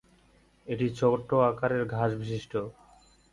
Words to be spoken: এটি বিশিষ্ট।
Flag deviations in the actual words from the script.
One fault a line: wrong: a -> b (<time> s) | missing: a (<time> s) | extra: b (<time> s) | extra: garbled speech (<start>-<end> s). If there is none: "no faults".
extra: ছোট আকারের ঘাস (1.0 s)